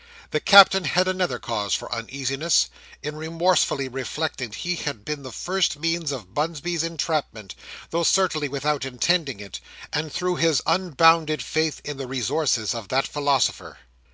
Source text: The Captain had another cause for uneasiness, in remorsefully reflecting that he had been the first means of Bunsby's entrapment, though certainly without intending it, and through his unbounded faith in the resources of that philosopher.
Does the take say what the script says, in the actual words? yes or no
no